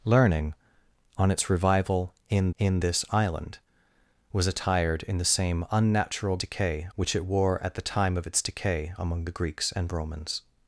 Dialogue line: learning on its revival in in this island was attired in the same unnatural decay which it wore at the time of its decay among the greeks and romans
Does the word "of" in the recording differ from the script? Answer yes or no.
no